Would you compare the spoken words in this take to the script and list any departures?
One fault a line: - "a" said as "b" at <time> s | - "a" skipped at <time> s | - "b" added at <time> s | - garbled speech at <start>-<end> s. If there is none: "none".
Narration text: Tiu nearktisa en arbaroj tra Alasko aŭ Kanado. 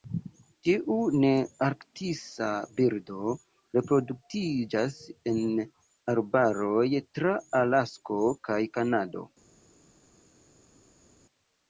- "birdo reproduktiĝas" added at 2.8 s
- "aŭ" said as "kaj" at 8.5 s